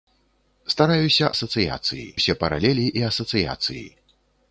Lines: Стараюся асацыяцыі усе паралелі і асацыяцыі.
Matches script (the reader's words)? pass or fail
pass